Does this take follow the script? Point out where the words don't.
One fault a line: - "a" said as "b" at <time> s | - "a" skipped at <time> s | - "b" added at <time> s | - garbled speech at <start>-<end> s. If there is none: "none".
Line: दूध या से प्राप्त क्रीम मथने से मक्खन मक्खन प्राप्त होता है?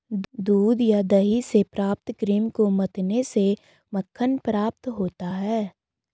- "दही" added at 1.0 s
- "को" added at 2.5 s
- "मक्खन" skipped at 4.4 s